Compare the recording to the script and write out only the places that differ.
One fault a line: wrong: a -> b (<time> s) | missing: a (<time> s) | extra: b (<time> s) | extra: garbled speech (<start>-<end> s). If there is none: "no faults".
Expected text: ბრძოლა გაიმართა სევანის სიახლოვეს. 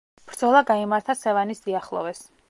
no faults